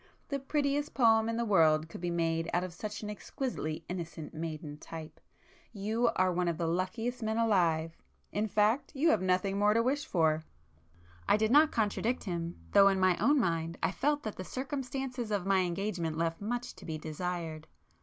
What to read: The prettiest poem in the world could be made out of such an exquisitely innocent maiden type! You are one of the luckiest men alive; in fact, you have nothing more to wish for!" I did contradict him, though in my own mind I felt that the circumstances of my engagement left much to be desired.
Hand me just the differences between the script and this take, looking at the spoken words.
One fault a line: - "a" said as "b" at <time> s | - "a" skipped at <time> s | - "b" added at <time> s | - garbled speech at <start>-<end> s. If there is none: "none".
- "not" added at 11.5 s